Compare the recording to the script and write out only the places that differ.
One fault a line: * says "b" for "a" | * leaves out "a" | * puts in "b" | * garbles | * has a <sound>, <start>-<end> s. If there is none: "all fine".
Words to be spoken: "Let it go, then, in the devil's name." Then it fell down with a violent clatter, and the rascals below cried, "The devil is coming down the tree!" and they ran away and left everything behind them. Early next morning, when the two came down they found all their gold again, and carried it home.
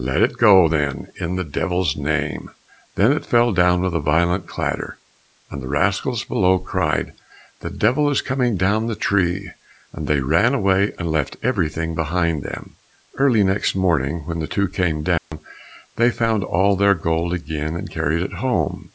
* has a dropout, 15.2-15.3 s